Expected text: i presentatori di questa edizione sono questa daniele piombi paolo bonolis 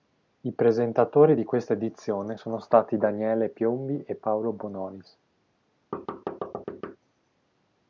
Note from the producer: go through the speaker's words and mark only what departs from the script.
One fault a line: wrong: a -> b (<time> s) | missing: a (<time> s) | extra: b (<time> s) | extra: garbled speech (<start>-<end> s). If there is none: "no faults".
wrong: questa -> stati (2.6 s)
extra: e (4.0 s)